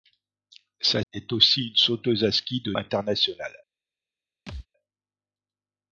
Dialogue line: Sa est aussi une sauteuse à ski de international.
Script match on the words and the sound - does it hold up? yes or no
no